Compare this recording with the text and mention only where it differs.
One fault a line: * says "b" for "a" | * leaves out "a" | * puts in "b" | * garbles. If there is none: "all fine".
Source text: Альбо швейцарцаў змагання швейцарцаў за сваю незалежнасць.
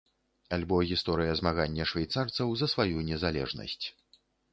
* says "гісторыя" for "швейцарцаў"